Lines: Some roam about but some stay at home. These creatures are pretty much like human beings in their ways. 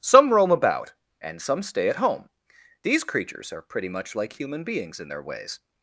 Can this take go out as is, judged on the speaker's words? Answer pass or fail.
fail